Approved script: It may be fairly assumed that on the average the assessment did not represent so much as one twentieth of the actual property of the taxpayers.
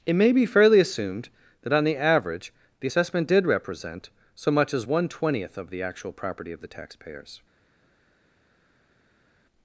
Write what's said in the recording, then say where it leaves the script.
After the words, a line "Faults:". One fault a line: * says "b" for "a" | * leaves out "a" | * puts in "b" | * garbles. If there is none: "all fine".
It may be fairly assumed that on the average the assessment did represent so much as one twentieth of the actual property of the taxpayers.
Faults:
* leaves out "not"